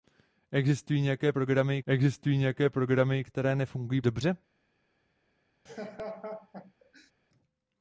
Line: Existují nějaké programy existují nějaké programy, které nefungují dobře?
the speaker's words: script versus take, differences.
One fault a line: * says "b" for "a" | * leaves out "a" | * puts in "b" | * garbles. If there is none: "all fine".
all fine